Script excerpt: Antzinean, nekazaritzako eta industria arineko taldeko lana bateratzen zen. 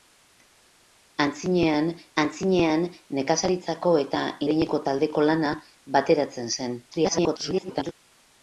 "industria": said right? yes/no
no